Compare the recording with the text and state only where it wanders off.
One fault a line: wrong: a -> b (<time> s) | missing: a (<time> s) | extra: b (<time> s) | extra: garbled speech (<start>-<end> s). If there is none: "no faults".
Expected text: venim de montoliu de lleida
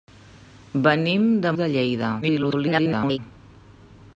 missing: montoliu (1.5 s)
extra: garbled speech (2.2-3.2 s)